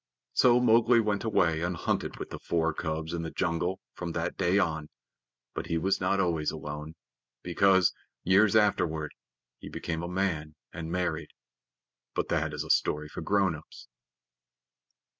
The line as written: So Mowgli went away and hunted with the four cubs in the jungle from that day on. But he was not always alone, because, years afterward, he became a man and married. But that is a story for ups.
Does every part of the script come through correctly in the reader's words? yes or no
no